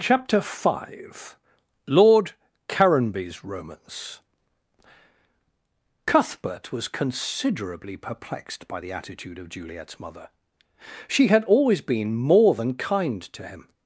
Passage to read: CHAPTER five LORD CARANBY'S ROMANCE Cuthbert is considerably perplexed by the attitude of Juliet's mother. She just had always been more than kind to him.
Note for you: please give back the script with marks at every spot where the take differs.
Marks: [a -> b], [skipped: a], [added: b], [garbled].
CHAPTER five LORD CARANBY'S ROMANCE Cuthbert [is -> was] considerably perplexed by the attitude of Juliet's mother. She [skipped: just] had always been more than kind to him.